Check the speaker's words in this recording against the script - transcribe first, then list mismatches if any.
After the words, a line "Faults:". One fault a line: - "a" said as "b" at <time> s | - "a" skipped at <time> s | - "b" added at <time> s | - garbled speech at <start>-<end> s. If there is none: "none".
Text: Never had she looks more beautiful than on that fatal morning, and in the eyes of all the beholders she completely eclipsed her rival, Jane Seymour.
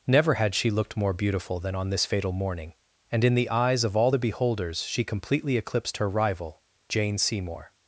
Never had she looked more beautiful than on this fatal morning, and in the eyes of all the beholders she completely eclipsed her rival, Jane Seymour.
Faults:
- "looks" said as "looked" at 0.7 s
- "that" said as "this" at 1.9 s